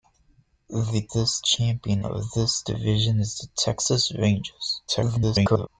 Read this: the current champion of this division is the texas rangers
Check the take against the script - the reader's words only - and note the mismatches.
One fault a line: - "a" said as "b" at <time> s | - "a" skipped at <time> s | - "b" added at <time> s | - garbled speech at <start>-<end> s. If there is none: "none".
- "current" said as "this" at 1.1 s
- garbled speech at 4.9-5.7 s